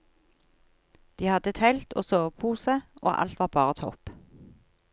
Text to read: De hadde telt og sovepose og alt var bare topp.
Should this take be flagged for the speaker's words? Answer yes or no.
no